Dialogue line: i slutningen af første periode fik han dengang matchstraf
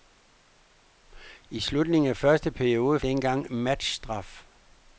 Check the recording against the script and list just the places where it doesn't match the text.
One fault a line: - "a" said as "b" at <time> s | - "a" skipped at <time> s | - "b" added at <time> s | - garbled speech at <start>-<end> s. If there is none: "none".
- "fik han" skipped at 3.0 s